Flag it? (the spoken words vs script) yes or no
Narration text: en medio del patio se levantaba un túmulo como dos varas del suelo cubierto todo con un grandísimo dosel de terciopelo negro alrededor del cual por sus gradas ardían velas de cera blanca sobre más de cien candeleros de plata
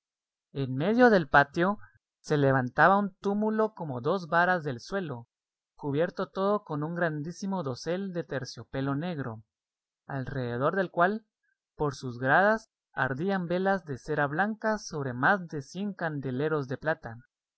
no